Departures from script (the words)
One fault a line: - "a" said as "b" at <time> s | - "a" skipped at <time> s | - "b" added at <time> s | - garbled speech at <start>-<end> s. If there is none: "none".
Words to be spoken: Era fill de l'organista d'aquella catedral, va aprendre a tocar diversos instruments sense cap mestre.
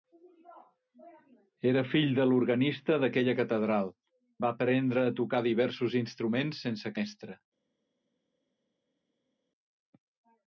- "cap" skipped at 7.0 s